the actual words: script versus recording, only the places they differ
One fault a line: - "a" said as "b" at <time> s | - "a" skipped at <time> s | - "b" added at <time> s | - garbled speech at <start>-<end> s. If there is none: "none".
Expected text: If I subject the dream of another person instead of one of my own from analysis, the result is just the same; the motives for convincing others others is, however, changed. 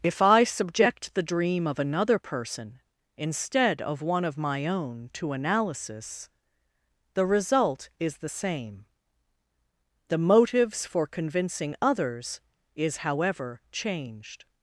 - "from" said as "to" at 5.1 s
- "just" skipped at 8.2 s
- "others" skipped at 12.4 s